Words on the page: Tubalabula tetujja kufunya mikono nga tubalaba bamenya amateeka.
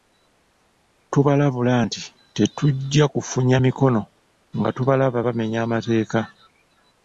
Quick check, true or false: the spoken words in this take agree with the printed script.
false